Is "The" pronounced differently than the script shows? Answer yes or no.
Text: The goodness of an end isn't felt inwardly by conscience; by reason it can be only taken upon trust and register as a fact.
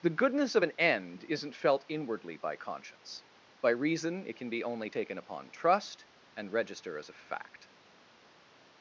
no